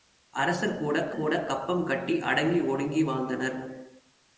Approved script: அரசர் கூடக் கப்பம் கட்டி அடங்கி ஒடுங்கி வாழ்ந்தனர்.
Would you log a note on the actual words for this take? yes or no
yes